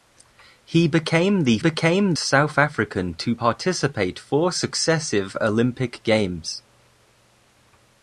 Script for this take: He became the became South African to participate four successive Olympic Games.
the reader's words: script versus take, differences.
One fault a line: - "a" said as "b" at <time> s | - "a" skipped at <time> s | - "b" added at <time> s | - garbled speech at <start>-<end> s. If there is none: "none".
none